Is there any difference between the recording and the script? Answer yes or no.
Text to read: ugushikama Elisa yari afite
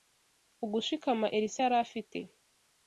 no